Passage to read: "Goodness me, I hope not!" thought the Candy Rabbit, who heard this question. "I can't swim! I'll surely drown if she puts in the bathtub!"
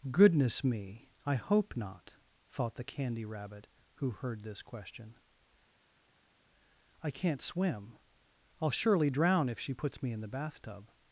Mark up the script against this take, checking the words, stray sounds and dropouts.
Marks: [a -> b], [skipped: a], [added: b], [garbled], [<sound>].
"Goodness me, I hope not!" thought the Candy Rabbit, who heard this question. "I can't swim! I'll surely drown if she puts [added: me] in the bathtub!"